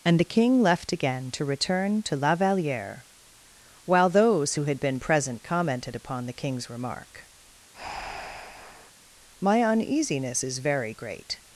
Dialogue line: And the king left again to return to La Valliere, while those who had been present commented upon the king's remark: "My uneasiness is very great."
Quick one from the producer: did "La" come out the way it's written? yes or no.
yes